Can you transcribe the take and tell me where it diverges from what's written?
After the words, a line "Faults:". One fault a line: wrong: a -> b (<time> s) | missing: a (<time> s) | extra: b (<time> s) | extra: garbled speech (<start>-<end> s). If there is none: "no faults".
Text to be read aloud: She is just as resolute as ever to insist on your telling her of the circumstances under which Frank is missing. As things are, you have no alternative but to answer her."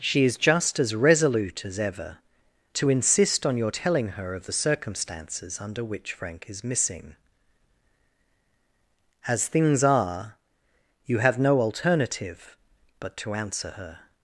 She is just as resolute as ever to insist on your telling her of the circumstances under which Frank is missing. As things are, you have no alternative but to answer her."
Faults:
no faults